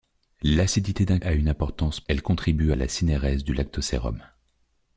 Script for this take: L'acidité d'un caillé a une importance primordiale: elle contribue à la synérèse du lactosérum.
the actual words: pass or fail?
fail